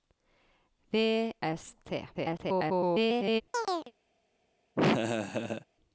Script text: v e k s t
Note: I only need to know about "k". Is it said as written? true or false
false